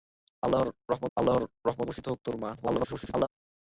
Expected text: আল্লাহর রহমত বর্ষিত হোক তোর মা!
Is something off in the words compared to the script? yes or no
yes